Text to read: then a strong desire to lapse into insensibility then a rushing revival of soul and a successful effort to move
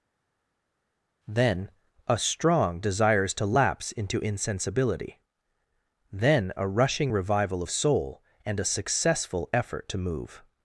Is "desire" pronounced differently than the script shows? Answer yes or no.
yes